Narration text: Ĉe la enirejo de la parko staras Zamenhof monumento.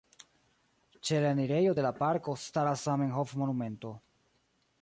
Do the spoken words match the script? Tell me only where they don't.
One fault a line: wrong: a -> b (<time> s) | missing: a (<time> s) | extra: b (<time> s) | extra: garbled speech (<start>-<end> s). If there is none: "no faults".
no faults